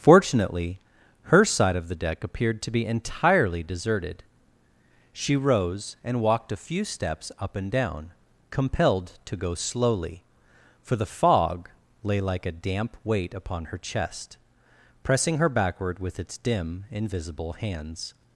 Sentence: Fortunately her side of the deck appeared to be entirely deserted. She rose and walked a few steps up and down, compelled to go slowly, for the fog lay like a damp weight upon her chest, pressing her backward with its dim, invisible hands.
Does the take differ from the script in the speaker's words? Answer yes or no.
no